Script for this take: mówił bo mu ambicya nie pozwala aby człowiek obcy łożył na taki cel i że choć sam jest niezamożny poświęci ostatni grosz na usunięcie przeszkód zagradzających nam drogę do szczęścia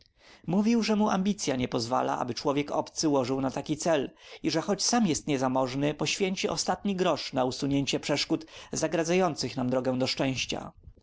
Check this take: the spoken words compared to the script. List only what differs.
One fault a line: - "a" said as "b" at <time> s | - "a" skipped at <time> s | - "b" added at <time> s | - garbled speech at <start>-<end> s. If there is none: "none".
- "bo" said as "że" at 0.8 s